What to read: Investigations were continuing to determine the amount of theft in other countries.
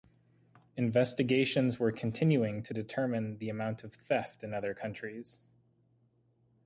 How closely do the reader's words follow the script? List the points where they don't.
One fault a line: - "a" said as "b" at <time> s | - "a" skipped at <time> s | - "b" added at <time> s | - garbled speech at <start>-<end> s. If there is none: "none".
none